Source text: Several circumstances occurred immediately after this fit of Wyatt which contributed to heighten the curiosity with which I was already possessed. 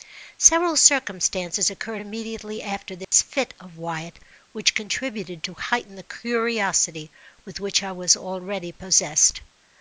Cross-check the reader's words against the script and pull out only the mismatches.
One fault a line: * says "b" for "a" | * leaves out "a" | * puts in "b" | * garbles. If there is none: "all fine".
all fine